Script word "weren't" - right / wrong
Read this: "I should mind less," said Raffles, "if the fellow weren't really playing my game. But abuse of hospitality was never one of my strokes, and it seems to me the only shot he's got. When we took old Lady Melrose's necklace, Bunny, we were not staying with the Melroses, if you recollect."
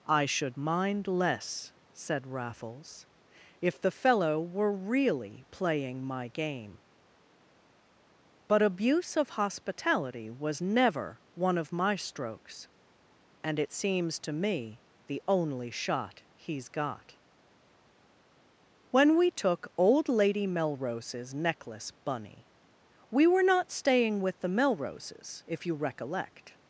wrong